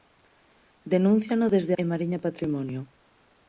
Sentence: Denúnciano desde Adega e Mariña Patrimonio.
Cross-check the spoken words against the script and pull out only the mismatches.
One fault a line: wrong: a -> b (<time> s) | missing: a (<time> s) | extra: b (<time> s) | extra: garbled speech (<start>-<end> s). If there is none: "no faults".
missing: Adega (1.7 s)